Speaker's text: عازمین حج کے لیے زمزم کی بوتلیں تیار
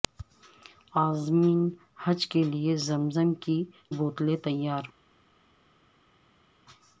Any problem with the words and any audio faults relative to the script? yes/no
no